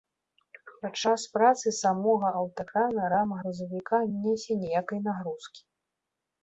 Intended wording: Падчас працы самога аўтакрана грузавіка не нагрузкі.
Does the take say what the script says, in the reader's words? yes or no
no